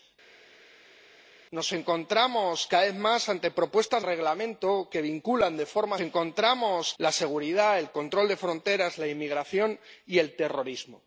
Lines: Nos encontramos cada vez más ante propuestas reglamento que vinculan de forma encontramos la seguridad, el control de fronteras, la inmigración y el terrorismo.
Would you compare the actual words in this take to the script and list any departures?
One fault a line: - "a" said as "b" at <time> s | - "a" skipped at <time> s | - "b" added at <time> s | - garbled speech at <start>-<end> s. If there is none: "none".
none